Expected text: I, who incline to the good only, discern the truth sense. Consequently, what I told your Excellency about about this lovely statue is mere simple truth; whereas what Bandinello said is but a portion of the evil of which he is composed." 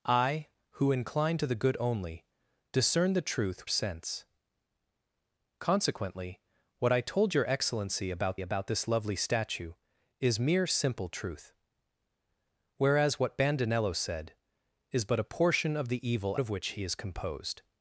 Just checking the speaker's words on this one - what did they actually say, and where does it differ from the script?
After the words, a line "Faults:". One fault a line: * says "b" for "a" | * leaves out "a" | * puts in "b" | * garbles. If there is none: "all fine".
I, who incline to the good only, discern the truth sense. Consequently, what I told your Excellency about about this lovely statue is mere simple truth; whereas what Bandinello said is but a portion of the evil of which he is composed."
Faults:
all fine